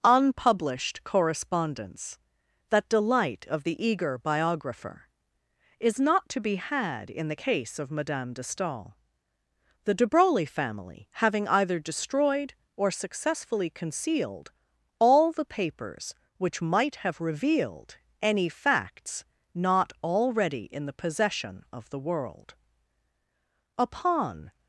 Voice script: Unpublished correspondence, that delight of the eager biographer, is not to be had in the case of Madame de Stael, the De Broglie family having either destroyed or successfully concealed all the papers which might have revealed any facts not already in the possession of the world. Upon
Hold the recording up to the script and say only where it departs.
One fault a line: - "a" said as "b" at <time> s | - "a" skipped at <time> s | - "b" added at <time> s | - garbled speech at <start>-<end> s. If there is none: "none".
none